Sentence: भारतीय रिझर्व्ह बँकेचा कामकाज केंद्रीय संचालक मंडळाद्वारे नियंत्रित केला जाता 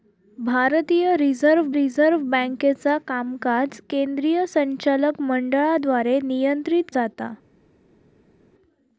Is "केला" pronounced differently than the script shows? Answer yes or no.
yes